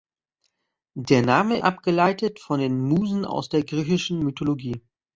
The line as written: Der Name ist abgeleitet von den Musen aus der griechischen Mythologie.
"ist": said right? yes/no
no